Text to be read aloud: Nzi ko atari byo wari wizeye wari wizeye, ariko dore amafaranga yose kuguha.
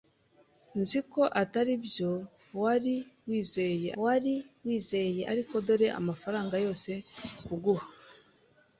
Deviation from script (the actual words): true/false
false